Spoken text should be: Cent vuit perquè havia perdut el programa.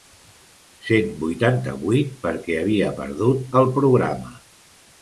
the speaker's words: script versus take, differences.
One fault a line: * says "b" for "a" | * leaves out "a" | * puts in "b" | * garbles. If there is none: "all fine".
* puts in "vuitanta"